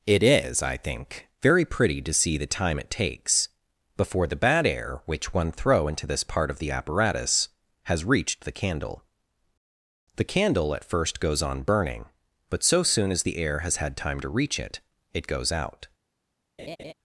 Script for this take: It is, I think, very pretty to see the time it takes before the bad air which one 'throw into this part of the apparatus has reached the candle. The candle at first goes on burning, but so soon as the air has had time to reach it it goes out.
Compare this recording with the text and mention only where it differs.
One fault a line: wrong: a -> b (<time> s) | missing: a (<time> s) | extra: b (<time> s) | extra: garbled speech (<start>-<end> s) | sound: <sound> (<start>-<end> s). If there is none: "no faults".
sound: laugh (16.6-16.9 s)